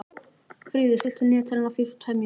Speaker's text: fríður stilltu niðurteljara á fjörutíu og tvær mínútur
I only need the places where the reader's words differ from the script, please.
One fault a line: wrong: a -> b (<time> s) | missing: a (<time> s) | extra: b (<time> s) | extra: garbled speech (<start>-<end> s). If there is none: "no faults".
no faults